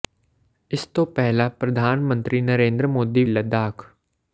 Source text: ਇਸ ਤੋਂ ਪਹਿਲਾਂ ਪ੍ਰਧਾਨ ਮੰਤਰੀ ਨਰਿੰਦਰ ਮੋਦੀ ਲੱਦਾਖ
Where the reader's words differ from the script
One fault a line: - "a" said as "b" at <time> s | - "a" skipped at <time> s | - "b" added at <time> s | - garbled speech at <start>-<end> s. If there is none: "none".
none